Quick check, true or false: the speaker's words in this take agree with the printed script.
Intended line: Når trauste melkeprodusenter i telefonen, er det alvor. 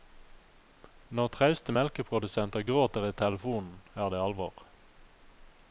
false